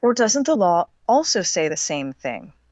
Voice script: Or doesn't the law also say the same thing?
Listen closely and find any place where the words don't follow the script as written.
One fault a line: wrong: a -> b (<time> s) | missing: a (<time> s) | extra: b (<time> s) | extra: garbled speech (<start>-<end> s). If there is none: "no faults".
no faults